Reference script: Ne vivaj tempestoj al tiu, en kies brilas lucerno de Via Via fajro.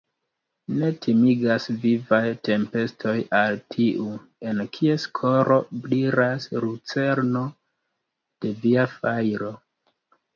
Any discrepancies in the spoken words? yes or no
yes